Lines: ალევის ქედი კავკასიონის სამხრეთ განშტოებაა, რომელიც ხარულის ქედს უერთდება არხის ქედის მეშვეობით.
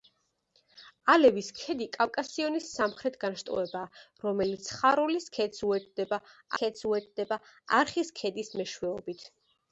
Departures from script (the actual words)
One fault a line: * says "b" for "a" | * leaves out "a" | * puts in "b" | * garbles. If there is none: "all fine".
* puts in "ქედს უერთდება"